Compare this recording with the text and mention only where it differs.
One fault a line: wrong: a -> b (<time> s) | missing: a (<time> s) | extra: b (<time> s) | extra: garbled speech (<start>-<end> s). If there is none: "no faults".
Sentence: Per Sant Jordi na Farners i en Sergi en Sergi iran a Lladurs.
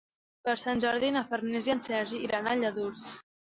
missing: en Sergi (2.2 s)